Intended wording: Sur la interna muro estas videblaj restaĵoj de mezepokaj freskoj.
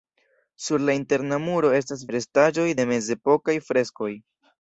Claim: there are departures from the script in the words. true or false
true